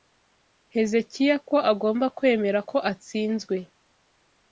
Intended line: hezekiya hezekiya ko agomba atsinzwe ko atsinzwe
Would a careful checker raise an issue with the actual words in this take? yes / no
yes